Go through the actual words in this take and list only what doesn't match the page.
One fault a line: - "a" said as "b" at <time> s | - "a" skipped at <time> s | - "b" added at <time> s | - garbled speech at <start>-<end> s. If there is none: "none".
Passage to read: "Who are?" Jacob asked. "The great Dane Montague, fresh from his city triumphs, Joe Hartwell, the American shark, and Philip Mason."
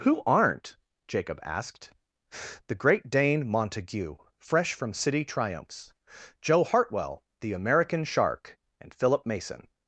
- "are" said as "aren't" at 0.2 s
- "his" skipped at 4.9 s